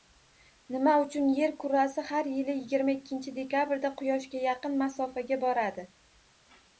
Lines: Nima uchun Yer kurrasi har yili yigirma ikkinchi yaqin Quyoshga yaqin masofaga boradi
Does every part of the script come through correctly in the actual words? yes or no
no